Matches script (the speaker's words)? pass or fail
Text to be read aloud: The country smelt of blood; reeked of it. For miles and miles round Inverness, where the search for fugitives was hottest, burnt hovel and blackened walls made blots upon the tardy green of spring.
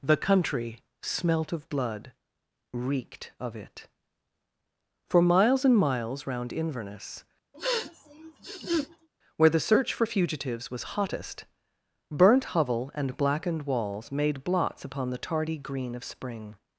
pass